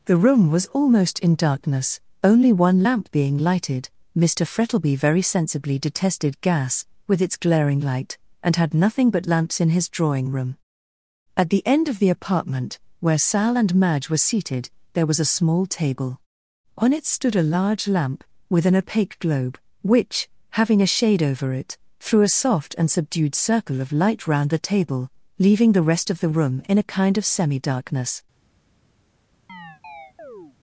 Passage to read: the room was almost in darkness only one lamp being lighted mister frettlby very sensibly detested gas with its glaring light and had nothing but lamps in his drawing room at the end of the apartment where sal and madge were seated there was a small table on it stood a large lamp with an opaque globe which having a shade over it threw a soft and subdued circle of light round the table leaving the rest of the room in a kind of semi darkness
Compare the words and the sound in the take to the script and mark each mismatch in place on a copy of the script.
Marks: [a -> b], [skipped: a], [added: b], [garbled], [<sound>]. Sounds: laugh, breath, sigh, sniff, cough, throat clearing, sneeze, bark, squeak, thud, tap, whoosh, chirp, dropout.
the room was almost in darkness only one lamp being lighted mister frettlby very sensibly detested gas with its glaring light and had nothing but lamps in his drawing room at the end of the apartment where sal and madge were seated there was a small table on it stood a large lamp with an opaque globe which having a shade over it threw a soft and subdued circle of light round the table leaving the rest of the room in a kind of semi darkness [chirp]